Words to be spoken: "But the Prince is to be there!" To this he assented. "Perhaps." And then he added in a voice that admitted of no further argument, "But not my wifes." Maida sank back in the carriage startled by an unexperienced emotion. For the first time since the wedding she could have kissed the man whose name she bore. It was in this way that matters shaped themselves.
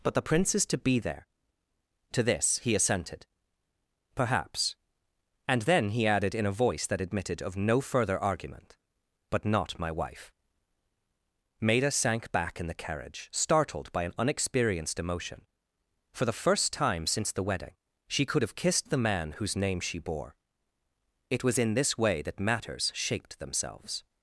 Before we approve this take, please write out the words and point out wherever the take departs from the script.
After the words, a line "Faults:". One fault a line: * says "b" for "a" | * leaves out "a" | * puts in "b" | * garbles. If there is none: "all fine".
"But the Prince is to be there!" To this he assented. "Perhaps." And then he added in a voice that admitted of no further argument, "But not my wife." Maida sank back in the carriage startled by an unexperienced emotion. For the first time since the wedding she could have kissed the man whose name she bore. It was in this way that matters shaped themselves.
Faults:
* says "wife" for "wifes"